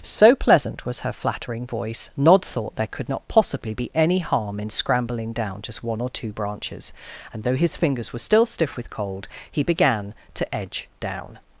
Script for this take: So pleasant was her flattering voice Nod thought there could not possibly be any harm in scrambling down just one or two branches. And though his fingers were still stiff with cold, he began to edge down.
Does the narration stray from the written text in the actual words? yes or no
no